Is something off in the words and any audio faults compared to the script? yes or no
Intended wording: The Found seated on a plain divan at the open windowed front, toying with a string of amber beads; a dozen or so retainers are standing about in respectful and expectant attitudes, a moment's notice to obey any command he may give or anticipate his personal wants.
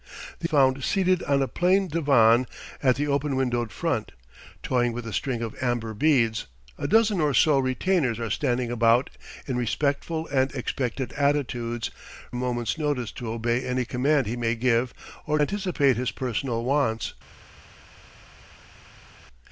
no